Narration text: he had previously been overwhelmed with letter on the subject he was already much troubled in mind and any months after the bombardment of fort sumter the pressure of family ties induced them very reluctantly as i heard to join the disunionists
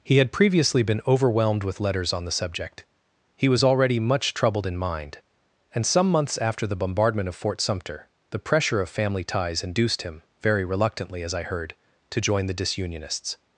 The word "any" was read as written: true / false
false